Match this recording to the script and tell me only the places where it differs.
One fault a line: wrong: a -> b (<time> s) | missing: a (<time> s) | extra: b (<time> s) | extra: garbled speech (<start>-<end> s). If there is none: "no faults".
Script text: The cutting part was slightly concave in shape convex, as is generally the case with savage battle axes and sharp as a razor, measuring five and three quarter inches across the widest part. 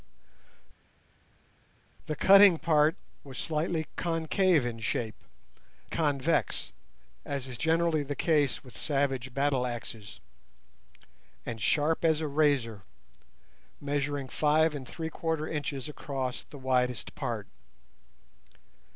no faults